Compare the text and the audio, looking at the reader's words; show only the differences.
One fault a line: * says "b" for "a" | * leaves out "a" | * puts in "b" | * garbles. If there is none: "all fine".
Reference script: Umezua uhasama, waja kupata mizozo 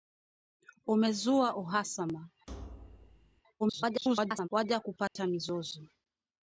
* garbles